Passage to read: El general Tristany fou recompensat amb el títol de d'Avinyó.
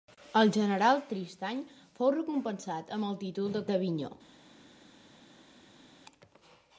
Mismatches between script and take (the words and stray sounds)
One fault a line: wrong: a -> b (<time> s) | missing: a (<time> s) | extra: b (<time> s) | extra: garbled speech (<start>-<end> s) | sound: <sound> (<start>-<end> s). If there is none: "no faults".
no faults